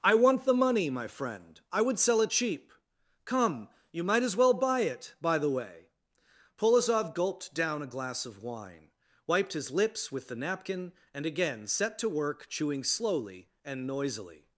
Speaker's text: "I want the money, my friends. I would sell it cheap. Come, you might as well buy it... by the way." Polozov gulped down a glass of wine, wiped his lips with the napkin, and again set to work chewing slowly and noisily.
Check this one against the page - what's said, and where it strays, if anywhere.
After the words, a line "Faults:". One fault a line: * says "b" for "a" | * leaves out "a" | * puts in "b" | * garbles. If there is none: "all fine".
"I want the money, my friend. I would sell it cheap. Come, you might as well buy it... by the way." Polozov gulped down a glass of wine, wiped his lips with the napkin, and again set to work chewing slowly and noisily.
Faults:
* says "friend" for "friends"